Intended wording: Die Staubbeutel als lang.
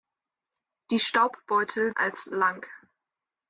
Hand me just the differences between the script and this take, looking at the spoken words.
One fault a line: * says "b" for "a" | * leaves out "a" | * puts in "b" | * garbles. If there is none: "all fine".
all fine